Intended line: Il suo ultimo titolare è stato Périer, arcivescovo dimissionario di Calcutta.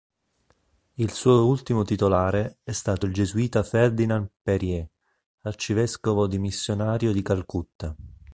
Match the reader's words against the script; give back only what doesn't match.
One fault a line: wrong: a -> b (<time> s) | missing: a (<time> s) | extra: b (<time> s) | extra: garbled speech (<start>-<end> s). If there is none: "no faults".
extra: il gesuita Ferdinand (3.0 s)